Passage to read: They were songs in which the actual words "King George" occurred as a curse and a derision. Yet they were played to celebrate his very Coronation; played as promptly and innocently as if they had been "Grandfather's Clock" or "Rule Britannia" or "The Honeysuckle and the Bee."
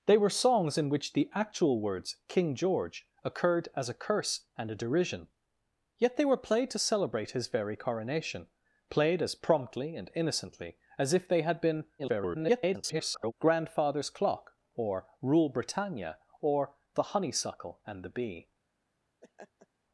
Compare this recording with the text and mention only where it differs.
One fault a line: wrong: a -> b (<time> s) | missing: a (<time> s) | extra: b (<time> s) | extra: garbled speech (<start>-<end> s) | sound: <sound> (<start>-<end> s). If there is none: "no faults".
extra: garbled speech (12.0-13.3 s)
sound: laugh (19.2-19.7 s)